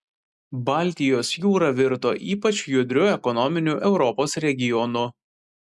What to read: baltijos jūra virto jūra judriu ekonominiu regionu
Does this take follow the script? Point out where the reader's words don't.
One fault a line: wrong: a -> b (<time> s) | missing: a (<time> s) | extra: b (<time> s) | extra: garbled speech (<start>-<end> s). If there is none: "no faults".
wrong: jūra -> ypač (2.4 s)
extra: europos (3.9 s)